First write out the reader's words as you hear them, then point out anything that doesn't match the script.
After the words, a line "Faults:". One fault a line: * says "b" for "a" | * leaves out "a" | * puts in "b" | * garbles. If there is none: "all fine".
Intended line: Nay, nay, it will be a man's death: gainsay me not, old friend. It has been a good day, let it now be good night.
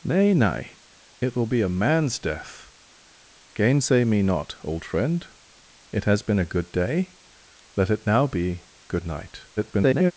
Nay, nay, it will be a man's death: gainsay me not, old friend. It has been a good day, let it now be good night. [garbled]
Faults:
* garbles